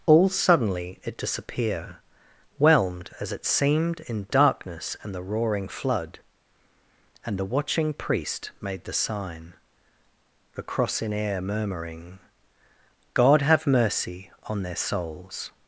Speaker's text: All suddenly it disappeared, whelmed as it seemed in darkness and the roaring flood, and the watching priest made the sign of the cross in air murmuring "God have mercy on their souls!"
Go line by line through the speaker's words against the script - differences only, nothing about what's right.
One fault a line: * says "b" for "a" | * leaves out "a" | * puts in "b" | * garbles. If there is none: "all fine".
* says "disappear" for "disappeared"
* leaves out "of"